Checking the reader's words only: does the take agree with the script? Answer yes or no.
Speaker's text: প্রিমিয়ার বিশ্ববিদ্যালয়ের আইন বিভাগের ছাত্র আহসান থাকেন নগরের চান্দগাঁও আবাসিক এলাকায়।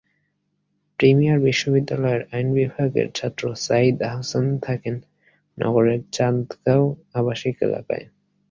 no